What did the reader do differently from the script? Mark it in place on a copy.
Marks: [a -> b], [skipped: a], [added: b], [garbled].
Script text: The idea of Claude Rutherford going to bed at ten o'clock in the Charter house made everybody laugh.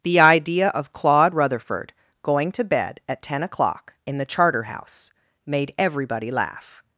The idea of Claude Rutherford going to bed at ten o'clock in the Charter house made everybody laugh.